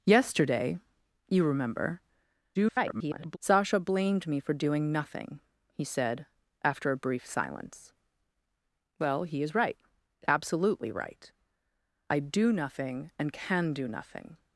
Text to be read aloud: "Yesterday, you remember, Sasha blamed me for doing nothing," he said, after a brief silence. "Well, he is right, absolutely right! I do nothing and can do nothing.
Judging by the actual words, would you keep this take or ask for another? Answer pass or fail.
fail